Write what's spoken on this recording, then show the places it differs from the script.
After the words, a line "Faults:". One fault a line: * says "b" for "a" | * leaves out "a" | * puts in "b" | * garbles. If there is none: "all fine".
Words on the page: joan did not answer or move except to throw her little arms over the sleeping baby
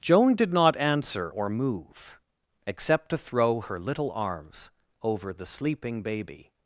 joan did not answer or move except to throw her little arms over the sleeping baby
Faults:
all fine